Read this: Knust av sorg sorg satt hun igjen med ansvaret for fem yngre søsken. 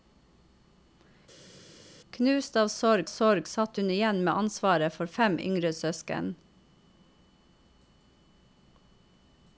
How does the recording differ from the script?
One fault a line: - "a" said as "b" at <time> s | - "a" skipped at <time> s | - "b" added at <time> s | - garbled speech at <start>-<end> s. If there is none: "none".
none